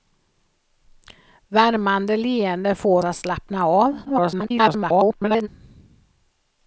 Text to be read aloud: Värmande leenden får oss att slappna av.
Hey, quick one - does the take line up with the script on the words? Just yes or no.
no